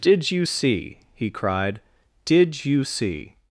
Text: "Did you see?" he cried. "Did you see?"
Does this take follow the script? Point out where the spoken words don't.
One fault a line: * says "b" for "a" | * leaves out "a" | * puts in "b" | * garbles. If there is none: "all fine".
all fine